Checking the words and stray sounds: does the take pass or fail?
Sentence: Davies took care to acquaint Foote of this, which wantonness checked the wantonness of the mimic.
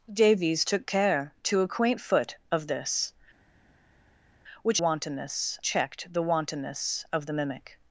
pass